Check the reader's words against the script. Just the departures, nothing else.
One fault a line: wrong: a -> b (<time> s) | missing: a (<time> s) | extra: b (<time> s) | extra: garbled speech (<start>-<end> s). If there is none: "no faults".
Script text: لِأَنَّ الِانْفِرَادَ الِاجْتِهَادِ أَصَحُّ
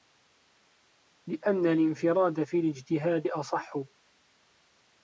extra: فِي (2.4 s)